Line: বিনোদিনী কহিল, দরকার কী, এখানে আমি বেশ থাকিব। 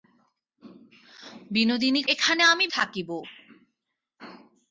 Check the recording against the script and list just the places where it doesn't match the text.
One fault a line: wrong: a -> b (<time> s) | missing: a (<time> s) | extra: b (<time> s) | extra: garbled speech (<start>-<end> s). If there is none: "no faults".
missing: কহিল দরকার কী (2.0 s)
missing: বেশ (2.7 s)